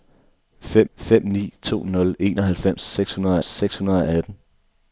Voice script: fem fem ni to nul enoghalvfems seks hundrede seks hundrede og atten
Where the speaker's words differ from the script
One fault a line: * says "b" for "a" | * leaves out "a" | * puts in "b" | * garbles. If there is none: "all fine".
all fine